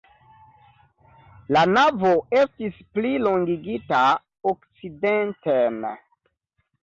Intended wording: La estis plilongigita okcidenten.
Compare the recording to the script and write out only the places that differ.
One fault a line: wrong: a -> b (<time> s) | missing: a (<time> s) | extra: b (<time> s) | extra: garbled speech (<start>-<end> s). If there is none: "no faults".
extra: navo (1.7 s)